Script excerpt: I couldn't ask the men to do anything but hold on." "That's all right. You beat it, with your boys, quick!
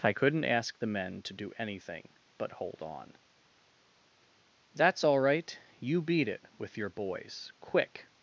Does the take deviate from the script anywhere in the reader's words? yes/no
no